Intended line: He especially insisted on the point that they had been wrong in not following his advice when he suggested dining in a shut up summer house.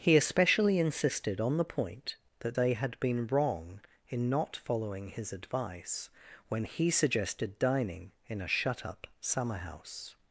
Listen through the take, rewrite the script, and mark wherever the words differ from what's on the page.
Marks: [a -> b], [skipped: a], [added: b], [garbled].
He especially insisted on the point that they had been wrong in not following his advice when he suggested dining in a shut up summer house.